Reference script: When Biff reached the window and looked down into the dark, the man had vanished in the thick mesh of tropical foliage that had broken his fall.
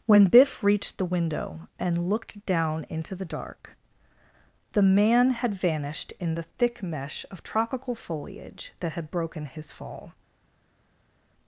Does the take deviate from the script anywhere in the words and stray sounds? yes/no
no